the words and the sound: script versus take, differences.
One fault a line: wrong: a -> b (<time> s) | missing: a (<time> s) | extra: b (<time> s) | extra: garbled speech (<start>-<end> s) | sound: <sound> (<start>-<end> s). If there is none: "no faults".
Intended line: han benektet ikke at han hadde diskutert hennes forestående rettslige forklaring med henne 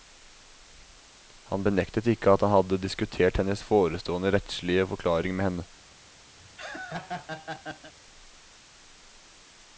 sound: laugh (6.4-7.9 s)